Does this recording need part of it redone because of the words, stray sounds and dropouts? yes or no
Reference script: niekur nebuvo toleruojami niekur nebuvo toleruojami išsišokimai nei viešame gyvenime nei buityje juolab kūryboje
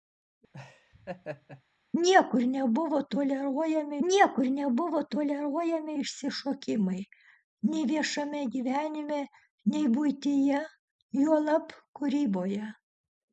yes